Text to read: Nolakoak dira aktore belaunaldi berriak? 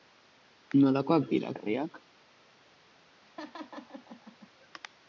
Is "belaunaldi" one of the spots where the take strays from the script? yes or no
yes